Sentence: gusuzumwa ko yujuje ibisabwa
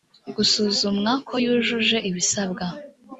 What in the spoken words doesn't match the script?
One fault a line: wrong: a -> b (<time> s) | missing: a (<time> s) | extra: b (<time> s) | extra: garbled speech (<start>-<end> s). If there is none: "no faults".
no faults